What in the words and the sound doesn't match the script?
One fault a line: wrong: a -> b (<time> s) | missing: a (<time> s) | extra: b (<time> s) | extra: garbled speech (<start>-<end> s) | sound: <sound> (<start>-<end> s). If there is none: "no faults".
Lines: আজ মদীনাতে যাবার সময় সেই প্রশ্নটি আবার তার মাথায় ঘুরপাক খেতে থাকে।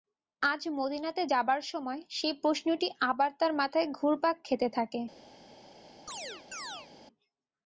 sound: chirp (6.1-6.9 s)